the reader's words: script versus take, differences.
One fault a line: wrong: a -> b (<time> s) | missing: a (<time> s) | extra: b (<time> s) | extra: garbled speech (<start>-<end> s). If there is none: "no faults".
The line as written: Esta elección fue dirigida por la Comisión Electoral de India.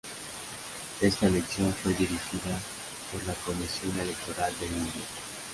no faults